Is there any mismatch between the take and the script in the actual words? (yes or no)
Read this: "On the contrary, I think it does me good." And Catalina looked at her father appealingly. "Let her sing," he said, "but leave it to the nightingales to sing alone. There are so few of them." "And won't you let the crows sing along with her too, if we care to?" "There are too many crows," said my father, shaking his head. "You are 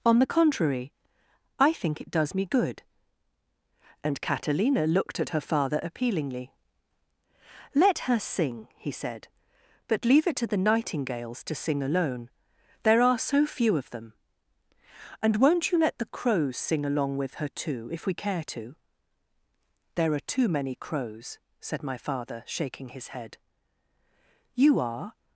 no